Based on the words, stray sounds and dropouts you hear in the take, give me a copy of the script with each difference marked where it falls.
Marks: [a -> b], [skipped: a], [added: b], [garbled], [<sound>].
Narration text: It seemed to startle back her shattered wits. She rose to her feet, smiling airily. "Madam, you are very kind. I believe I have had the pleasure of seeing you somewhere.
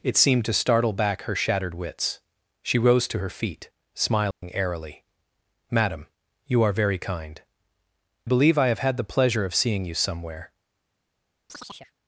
It seemed to startle back her shattered wits. She rose to her feet, smiling [dropout] airily. "Madam, you are very kind. [skipped: I] believe I have had the pleasure of seeing you somewhere. [chirp]